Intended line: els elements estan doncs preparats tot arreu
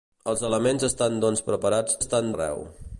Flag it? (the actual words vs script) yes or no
yes